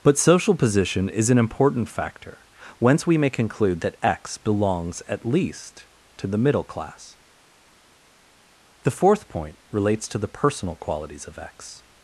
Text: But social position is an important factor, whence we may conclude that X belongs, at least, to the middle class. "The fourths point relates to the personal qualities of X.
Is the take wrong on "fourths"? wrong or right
wrong